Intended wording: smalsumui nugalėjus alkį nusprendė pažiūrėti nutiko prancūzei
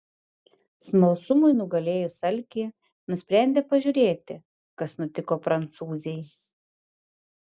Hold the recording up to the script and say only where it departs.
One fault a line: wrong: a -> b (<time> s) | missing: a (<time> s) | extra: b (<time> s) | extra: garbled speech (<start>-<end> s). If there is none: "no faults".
extra: kas (4.8 s)